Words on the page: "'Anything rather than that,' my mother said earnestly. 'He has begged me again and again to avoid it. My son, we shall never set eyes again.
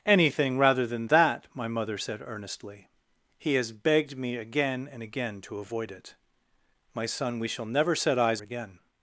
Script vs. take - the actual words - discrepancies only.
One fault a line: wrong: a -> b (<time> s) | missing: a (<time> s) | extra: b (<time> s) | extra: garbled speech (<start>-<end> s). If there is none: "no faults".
no faults